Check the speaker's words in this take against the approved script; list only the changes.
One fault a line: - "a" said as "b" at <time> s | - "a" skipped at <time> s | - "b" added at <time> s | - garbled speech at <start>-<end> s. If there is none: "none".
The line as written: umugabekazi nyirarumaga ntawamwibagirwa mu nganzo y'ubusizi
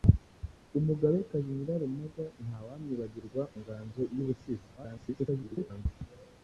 - "mu" skipped at 3.4 s
- garbled speech at 4.8-5.9 s